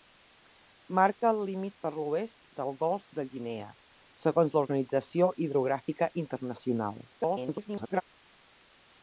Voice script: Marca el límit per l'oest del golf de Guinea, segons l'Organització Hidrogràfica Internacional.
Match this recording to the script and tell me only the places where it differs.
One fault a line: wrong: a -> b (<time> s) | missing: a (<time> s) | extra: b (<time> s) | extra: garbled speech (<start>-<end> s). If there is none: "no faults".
extra: garbled speech (7.1-8.0 s)